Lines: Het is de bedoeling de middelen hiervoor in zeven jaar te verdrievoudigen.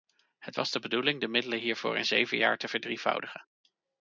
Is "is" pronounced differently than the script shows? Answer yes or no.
yes